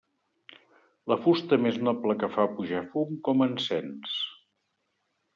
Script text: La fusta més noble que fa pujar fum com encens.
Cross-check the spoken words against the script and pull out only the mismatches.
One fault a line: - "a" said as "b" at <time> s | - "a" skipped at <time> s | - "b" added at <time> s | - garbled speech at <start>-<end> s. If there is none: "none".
none